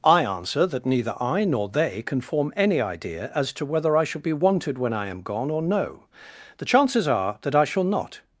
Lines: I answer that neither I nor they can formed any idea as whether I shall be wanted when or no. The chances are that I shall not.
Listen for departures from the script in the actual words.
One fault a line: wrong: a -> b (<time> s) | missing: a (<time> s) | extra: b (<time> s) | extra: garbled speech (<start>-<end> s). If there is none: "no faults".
wrong: formed -> form (2.2 s)
extra: to (3.5 s)
extra: I am gone (4.9 s)